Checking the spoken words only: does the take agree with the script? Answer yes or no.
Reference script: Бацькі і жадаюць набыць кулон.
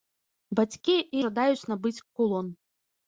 yes